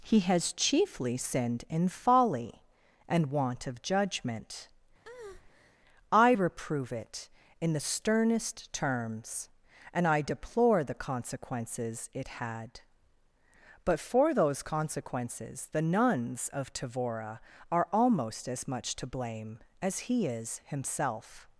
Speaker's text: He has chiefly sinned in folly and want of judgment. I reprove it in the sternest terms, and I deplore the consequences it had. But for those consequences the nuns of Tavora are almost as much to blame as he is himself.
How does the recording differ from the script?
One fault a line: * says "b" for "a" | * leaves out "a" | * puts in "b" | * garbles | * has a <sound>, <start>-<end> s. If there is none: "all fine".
* has a breath, 5.0-5.8 s